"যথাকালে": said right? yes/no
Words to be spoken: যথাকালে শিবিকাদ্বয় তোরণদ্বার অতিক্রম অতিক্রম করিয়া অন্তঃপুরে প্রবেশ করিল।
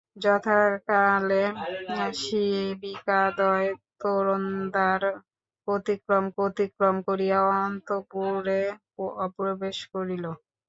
yes